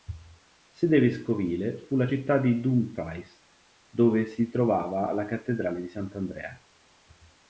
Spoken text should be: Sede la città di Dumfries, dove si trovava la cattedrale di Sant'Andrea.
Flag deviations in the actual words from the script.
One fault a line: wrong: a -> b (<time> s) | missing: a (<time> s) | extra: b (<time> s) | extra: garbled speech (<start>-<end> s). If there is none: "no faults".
extra: vescovile fu (1.0 s)